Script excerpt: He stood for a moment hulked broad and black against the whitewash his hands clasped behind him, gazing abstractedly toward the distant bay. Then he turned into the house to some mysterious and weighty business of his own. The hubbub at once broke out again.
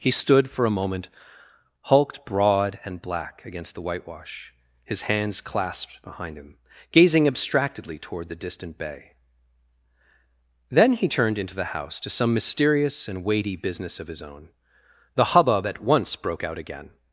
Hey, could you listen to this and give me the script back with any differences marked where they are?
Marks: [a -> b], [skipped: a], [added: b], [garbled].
He stood for a moment hulked broad and black against the whitewash his hands clasped behind him, gazing abstractedly toward the distant bay. Then he turned into the house to some mysterious and weighty business of his own. The hubbub at once broke out again.